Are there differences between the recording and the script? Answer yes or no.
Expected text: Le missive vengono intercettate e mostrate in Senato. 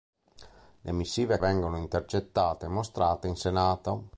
no